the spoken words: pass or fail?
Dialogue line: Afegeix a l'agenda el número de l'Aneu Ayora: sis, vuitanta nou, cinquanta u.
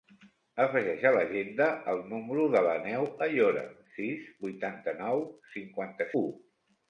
pass